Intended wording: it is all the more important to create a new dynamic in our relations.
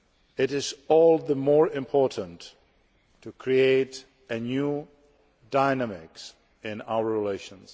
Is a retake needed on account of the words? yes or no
no